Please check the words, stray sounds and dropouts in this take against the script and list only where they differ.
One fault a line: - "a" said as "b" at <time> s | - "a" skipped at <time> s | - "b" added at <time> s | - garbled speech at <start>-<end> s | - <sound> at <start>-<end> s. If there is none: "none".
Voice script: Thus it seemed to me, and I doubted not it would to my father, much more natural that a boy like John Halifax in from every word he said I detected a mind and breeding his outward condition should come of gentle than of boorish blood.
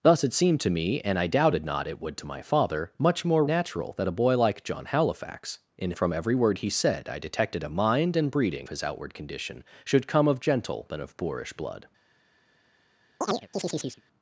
- chirp at 13.2-14.0 s